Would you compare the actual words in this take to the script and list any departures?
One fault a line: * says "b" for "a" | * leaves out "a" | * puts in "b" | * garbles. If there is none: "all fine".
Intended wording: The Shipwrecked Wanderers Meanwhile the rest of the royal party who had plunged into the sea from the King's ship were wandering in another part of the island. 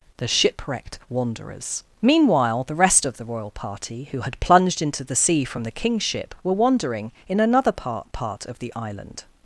* puts in "part"